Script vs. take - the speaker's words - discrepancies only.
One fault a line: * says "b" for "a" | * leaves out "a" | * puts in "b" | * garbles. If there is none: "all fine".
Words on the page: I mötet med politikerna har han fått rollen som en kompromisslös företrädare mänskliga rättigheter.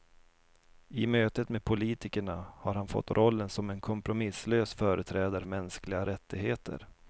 all fine